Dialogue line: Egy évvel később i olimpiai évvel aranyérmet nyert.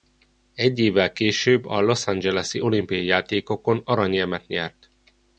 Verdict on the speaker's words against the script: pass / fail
fail